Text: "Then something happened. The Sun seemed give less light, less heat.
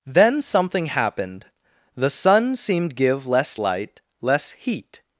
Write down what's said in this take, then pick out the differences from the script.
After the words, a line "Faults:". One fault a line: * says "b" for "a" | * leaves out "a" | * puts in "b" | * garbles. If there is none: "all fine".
"Then something happened. The Sun seemed give less light, less heat.
Faults:
all fine